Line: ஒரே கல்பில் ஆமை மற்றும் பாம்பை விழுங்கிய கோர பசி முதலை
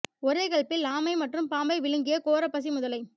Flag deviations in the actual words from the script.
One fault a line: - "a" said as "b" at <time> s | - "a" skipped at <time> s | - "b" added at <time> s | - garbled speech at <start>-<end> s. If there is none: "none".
none